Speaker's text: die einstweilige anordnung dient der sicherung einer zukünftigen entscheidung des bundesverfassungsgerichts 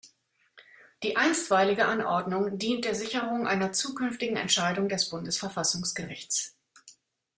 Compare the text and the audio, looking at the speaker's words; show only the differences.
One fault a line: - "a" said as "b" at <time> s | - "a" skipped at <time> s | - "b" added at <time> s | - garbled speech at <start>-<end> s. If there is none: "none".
none